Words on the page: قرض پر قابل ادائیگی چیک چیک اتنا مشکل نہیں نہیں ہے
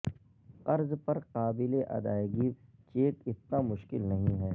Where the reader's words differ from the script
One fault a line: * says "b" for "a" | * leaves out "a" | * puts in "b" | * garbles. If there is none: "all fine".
* leaves out "چیک"
* leaves out "نہیں"